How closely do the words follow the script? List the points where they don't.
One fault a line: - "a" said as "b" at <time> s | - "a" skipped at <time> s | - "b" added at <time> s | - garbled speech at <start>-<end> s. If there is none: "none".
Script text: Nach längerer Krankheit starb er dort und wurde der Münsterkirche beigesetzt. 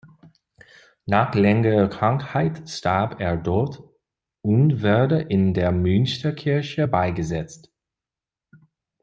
- "in" added at 5.2 s